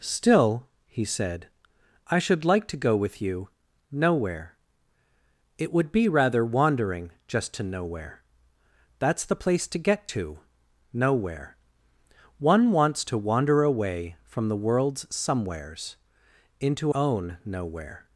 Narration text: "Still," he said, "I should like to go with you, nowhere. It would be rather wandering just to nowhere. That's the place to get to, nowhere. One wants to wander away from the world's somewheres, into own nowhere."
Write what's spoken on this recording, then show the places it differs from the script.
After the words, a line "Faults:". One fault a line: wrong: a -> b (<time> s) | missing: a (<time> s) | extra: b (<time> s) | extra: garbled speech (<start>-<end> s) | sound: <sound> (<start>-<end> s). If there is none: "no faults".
"Still," he said, "I should like to go with you, nowhere. It would be rather wandering just to nowhere. That's the place to get to, nowhere. One wants to wander away from the world's somewheres, into own nowhere."
Faults:
no faults